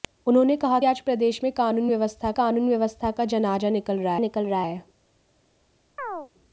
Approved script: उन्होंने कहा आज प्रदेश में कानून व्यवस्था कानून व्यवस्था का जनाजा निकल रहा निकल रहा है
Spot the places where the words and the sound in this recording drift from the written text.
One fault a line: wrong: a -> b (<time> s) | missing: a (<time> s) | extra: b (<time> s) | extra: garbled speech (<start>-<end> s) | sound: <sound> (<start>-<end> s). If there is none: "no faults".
sound: chirp (6.0-6.3 s)